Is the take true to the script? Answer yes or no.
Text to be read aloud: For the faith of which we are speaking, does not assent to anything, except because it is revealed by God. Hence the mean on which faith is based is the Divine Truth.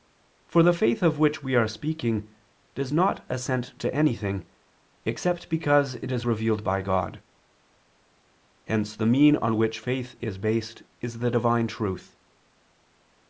yes